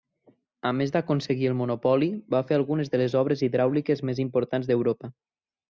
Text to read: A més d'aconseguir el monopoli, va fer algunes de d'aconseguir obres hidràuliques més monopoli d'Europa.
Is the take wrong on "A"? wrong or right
right